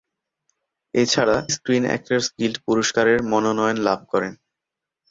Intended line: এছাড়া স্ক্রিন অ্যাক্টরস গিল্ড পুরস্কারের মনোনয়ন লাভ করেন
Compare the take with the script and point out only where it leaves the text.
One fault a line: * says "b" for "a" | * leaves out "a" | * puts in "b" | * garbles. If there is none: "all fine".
all fine